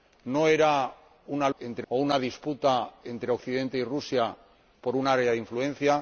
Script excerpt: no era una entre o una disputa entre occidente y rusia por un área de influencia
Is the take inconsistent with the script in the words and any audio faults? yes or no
no